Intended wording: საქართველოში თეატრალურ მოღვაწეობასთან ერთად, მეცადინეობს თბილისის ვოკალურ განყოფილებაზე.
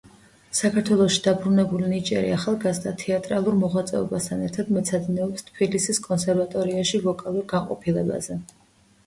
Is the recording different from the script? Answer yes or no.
yes